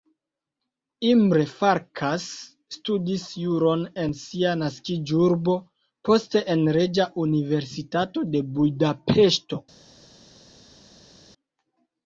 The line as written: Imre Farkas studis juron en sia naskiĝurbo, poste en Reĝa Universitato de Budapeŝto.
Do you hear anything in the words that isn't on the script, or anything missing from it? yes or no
no